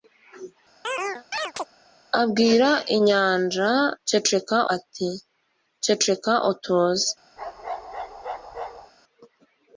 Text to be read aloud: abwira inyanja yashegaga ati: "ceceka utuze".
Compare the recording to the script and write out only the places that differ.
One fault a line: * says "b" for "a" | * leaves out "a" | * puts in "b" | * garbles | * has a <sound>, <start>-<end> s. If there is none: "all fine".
* has a chirp, 0.8-1.7 s
* says "ceceka" for "yashegaga"
* has a bark, 7.4-8.9 s